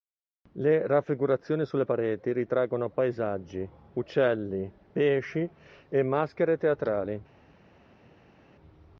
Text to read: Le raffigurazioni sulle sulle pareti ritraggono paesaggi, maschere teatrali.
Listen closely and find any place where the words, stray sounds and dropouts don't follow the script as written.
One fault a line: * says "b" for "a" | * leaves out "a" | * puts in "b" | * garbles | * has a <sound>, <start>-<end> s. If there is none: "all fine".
* leaves out "sulle"
* puts in "uccelli pesci e"